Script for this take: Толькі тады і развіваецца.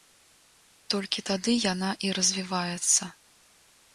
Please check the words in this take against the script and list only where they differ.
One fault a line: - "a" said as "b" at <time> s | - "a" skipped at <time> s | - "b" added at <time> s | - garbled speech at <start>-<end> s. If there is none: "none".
- "яна" added at 1.7 s